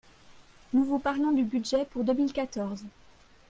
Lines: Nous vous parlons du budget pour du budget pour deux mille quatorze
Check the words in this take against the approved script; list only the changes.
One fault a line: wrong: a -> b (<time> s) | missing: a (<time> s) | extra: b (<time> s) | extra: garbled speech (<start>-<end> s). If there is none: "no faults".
missing: du budget pour (2.1 s)